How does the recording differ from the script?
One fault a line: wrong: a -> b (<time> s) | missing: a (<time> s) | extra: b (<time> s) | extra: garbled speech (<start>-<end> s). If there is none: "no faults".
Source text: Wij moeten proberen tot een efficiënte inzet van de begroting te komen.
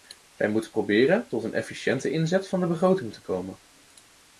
no faults